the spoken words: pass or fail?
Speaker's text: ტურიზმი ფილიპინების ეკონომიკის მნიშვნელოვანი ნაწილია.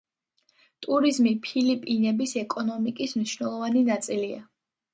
pass